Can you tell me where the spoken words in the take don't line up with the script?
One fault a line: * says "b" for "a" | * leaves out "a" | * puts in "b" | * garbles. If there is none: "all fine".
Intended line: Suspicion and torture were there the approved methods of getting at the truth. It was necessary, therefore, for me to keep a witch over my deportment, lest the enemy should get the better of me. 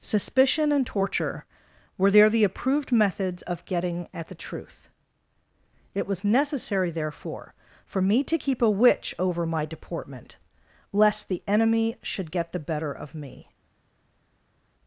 all fine